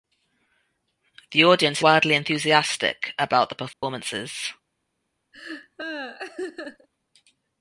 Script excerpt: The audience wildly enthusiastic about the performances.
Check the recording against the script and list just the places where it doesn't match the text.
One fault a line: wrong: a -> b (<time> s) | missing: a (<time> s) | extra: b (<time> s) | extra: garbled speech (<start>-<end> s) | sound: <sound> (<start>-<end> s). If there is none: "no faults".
sound: dropout (3.7-3.8 s)
sound: laugh (5.3-6.9 s)